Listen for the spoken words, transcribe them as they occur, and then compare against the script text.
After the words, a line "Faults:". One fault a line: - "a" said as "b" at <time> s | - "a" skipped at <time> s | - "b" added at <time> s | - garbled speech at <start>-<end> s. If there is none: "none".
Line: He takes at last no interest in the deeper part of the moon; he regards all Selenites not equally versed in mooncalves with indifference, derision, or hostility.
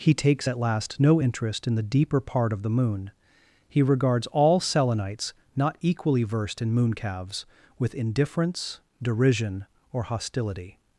He takes at last no interest in the deeper part of the moon; he regards all Selenites not equally versed in mooncalves with indifference, derision, or hostility.
Faults:
none